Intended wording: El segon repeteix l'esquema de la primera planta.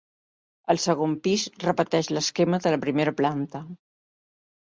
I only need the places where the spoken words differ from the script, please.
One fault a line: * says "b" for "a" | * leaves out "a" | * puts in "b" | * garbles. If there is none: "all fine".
* puts in "pis"